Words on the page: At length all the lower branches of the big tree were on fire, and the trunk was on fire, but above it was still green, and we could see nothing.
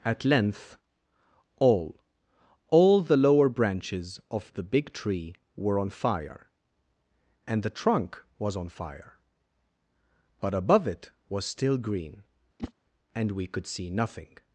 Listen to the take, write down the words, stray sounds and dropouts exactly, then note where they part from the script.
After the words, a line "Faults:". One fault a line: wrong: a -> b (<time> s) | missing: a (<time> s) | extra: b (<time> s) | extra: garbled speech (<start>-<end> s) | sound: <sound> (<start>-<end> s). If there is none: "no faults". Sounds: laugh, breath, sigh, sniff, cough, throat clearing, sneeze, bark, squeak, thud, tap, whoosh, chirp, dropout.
At length all all the lower branches of the big tree were on fire, and the trunk was on fire, but above it was still green, and we could see nothing.
Faults:
extra: all (2.7 s)
sound: whoosh (12.6-12.7 s)